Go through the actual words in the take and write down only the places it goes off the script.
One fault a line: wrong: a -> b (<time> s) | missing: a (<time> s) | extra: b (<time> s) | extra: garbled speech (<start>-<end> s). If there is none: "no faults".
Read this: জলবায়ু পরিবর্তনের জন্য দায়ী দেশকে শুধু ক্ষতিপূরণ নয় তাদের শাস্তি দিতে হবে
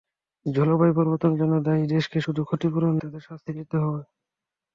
missing: নয় (2.9 s)